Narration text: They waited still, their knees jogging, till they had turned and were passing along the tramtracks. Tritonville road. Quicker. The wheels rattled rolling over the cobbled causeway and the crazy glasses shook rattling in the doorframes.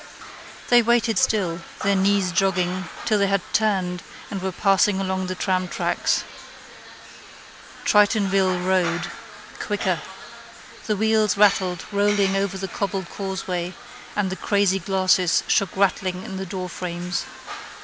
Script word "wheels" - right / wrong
right